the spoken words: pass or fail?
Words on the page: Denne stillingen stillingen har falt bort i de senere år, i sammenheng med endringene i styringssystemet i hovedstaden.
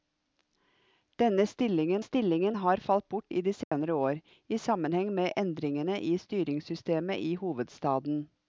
pass